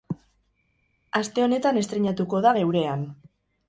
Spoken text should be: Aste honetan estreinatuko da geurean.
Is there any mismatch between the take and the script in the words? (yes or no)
no